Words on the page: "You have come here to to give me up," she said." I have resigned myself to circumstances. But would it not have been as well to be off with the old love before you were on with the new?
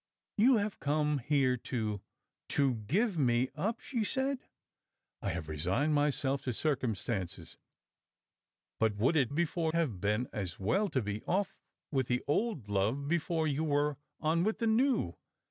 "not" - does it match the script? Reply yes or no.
no